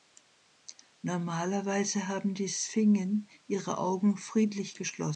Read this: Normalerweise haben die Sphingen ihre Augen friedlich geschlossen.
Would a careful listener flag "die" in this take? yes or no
no